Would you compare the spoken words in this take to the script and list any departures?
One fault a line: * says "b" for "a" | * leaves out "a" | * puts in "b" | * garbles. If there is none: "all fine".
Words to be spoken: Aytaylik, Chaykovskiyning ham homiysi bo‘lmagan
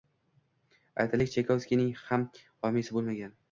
all fine